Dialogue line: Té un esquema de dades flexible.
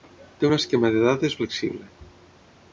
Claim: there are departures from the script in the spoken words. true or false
false